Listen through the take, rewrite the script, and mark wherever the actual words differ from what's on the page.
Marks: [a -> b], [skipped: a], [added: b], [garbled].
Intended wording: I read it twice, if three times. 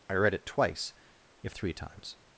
I read it twice, if three times.